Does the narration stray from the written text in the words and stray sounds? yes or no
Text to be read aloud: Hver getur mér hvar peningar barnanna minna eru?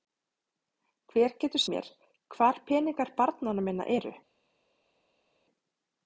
no